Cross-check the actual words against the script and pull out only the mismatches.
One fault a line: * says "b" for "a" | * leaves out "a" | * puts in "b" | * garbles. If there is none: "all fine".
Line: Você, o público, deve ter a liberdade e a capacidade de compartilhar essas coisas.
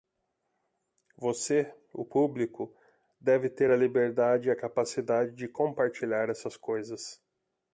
all fine